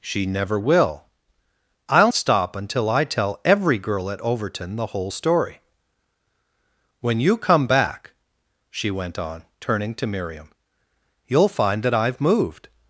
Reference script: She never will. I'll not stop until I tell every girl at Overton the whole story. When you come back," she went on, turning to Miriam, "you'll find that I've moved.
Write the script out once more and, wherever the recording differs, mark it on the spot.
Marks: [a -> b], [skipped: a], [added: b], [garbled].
She never will. I'll [skipped: not] stop until I tell every girl at Overton the whole story. When you come back," she went on, turning to Miriam, "you'll find that I've moved.